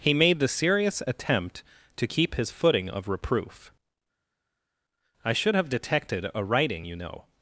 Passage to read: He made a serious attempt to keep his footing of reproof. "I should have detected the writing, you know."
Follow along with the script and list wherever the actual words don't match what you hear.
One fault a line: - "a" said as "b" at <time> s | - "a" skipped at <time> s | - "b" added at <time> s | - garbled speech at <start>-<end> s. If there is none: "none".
- "a" said as "the" at 0.4 s
- "the" said as "a" at 6.3 s